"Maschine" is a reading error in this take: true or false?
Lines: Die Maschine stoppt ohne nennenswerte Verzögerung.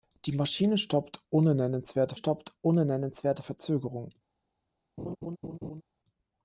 false